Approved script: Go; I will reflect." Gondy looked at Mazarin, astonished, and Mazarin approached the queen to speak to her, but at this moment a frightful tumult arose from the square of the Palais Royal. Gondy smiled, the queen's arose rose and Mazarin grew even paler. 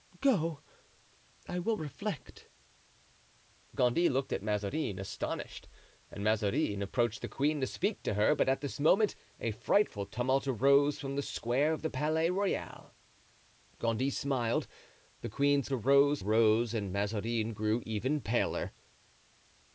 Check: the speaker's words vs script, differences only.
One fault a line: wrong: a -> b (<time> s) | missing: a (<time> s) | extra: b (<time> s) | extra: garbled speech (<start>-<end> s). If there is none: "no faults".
no faults